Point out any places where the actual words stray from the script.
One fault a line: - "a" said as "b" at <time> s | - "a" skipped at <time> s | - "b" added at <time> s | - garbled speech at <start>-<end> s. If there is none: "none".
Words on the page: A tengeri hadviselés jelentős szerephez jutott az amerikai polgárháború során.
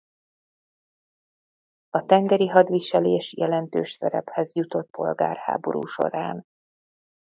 - "az amerikai" skipped at 4.9 s